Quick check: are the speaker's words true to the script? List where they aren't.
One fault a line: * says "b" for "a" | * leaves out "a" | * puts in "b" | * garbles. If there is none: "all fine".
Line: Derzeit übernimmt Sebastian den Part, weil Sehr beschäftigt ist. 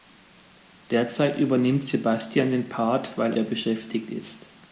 all fine